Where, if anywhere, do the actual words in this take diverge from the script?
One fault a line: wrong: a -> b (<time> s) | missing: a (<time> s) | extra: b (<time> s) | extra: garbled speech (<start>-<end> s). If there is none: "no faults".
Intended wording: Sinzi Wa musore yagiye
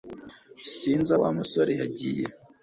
no faults